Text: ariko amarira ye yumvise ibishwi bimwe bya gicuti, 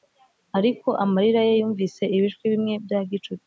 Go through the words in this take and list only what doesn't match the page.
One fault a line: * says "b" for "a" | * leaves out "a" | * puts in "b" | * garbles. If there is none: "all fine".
all fine